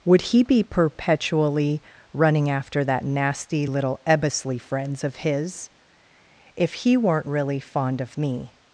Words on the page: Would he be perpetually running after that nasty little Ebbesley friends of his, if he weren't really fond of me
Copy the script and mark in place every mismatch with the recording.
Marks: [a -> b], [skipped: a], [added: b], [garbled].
Would he be perpetually running after that nasty little Ebbesley friends of his, if he weren't really fond of me